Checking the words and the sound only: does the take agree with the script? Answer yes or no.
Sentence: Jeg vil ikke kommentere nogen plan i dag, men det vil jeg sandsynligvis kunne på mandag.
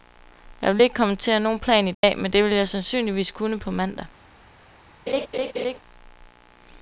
no